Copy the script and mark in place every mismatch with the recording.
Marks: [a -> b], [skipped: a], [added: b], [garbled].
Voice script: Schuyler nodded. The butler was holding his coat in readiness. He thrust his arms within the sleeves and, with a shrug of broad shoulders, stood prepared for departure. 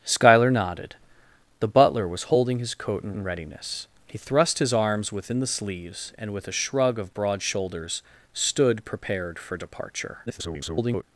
Schuyler nodded. The butler was holding his coat in [added: in] readiness. He thrust his arms within the sleeves and, with a shrug of broad shoulders, stood prepared for departure. [garbled]